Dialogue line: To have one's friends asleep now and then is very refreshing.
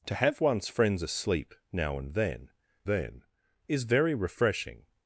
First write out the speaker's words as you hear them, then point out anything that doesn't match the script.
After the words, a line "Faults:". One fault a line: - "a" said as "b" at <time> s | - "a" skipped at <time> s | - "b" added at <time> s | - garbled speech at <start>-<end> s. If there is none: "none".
To have one's friends asleep now and then then is very refreshing.
Faults:
- "then" added at 2.8 s